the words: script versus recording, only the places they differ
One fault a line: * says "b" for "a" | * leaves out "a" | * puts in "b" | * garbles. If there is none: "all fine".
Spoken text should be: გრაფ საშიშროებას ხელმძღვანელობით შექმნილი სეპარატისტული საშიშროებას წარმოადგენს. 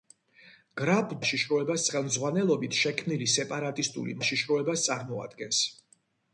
all fine